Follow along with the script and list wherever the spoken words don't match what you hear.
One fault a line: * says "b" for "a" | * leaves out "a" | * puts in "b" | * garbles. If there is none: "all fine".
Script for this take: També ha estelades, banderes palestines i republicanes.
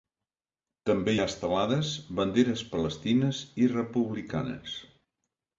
all fine